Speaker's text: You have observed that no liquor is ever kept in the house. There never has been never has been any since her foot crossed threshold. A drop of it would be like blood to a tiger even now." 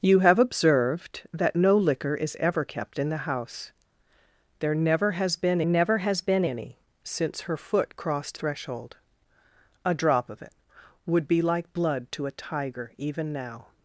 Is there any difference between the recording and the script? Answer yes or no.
no